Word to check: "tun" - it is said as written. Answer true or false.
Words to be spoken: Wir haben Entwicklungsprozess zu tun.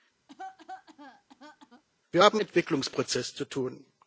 true